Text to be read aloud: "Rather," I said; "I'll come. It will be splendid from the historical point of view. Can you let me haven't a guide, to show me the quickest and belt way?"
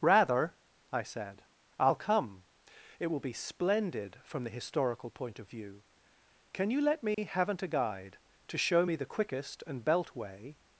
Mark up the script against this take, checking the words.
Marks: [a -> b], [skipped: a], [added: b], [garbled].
"Rather," I said; "I'll come. It will be splendid from the historical point of view. Can you let me haven't a guide, to show me the quickest and belt way?"